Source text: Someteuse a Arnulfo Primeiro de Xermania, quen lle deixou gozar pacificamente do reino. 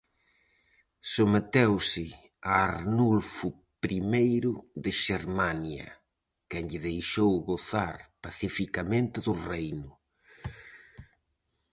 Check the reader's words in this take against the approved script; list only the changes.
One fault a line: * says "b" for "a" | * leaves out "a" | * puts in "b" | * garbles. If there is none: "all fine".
all fine